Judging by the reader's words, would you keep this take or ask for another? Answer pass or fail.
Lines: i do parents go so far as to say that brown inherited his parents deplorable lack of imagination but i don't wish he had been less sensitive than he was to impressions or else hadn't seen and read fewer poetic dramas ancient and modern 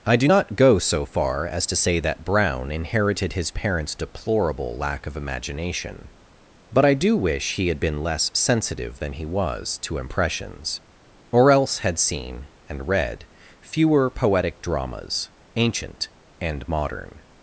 fail